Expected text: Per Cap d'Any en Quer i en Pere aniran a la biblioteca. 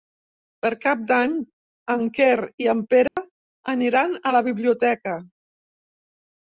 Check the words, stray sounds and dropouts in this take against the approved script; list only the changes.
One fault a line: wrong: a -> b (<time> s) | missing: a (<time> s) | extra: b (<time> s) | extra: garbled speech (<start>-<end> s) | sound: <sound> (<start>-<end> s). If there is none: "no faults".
sound: dropout (3.1-3.2 s)